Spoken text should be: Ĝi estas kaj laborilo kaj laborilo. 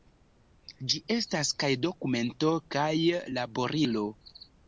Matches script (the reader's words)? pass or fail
fail